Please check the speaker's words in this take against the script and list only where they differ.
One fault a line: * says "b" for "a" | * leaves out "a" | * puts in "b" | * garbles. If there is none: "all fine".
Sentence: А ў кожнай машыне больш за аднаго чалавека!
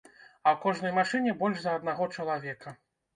all fine